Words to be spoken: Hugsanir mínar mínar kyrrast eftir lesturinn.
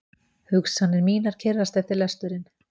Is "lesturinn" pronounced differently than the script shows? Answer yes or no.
no